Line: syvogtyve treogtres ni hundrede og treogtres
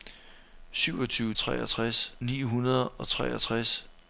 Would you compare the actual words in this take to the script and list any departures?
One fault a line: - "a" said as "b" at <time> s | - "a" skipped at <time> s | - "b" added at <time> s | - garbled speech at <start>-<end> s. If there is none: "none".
none